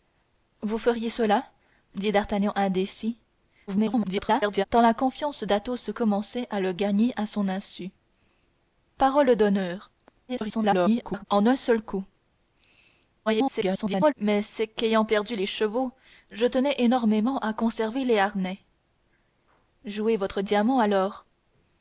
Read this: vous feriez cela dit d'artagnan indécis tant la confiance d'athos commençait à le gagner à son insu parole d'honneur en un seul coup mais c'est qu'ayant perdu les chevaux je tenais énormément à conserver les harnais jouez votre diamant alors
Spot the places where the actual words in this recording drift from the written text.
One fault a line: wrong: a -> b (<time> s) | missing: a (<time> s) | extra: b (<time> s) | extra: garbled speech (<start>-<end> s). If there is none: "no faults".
extra: garbled speech (3.7-4.6 s)
extra: garbled speech (10.3-11.2 s)
extra: garbled speech (13.3-14.1 s)